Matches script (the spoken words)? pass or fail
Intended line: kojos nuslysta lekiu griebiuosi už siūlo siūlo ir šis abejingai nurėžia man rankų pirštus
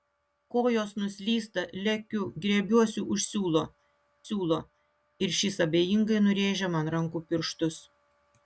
pass